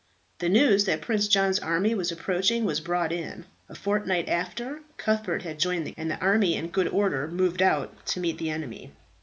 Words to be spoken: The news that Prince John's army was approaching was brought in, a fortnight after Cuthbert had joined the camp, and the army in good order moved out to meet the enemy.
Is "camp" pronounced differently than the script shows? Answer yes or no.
yes